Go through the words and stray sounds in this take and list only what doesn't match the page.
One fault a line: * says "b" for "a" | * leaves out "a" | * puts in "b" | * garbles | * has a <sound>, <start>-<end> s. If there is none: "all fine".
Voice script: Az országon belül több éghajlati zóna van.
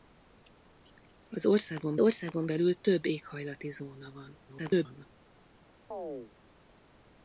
* puts in "országon"
* garbles
* has a chirp, 5.9-6.3 s